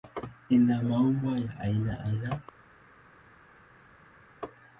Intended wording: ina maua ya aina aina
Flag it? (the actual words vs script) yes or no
no